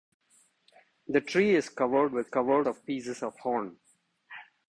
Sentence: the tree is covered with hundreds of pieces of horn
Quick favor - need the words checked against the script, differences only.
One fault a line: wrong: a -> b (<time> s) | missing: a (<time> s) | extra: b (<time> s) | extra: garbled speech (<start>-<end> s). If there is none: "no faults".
wrong: hundreds -> covered (2.2 s)